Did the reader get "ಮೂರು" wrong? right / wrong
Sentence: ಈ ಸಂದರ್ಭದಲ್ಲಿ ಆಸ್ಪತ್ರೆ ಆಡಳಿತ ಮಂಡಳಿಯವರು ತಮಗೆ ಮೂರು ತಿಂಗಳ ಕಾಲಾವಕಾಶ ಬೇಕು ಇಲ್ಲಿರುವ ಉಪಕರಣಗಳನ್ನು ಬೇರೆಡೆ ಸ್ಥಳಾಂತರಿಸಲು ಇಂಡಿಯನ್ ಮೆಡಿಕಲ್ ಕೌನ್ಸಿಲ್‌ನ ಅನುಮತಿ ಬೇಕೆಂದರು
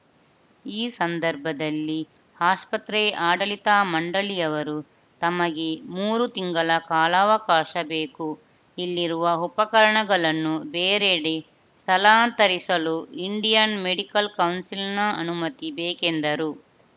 right